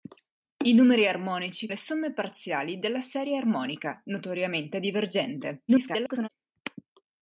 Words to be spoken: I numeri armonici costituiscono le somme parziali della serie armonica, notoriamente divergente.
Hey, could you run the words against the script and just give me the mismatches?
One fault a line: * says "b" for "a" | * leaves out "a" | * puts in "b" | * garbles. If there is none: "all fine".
* leaves out "costituiscono"
* garbles